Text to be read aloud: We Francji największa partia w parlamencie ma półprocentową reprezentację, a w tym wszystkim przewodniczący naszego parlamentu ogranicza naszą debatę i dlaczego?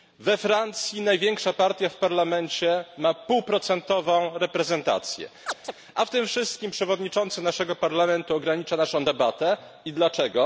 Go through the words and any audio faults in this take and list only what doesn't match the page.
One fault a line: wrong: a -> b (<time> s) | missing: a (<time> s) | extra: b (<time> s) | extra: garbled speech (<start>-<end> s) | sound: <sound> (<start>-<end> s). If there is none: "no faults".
sound: chirp (5.5-5.7 s)